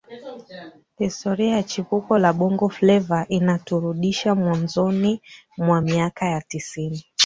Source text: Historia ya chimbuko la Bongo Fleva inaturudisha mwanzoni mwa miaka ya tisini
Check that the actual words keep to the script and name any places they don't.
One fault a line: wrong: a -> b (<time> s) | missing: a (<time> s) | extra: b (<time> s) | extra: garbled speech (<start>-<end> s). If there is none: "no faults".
no faults